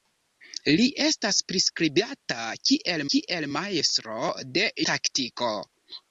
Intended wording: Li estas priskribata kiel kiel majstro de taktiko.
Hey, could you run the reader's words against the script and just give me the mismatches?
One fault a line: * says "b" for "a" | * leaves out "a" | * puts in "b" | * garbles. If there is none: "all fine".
all fine